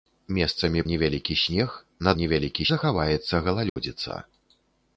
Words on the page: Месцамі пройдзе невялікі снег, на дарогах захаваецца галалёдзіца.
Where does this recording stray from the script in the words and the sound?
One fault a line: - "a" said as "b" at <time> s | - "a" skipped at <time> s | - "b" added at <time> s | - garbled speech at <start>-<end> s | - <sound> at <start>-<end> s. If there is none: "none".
- "пройдзе" skipped at 0.8 s
- "дарогах" said as "невялікі" at 2.2 s
- dropout at 3.7-3.8 s